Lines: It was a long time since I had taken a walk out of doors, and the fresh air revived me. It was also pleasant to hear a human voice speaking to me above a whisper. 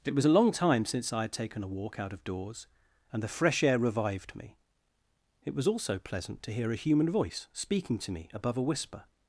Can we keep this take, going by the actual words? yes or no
yes